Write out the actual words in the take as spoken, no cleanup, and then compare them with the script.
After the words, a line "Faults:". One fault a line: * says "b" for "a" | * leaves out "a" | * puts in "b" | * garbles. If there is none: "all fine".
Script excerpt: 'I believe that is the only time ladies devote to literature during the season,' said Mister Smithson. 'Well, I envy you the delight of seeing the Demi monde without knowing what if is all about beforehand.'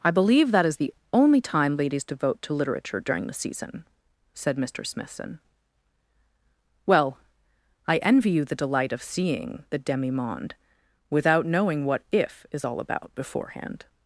'I believe that is the only time ladies devote to literature during the season,' said Mister Smithson. 'Well, I envy you the delight of seeing the Demi monde without knowing what if is all about beforehand.'
Faults:
all fine